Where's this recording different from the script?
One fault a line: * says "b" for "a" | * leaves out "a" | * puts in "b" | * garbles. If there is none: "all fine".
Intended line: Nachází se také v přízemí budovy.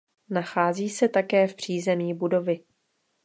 all fine